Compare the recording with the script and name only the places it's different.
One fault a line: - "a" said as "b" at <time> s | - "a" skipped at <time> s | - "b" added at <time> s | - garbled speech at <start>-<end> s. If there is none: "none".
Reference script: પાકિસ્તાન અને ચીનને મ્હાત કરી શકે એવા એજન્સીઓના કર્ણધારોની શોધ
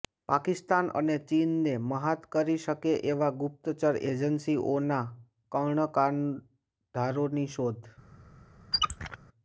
- "ગુપ્તચર" added at 3.4 s